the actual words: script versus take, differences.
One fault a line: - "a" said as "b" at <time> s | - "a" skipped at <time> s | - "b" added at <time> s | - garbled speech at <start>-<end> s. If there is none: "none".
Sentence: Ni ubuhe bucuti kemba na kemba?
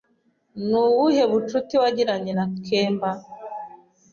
- "kemba" said as "wagiranye" at 1.8 s